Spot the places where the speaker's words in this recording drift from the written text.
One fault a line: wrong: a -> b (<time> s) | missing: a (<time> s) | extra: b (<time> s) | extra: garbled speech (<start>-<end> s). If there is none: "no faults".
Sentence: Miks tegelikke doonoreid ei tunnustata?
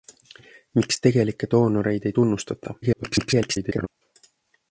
extra: garbled speech (2.8-3.9 s)